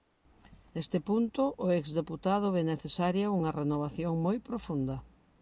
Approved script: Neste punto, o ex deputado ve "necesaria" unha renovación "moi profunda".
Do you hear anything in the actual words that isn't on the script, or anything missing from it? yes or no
no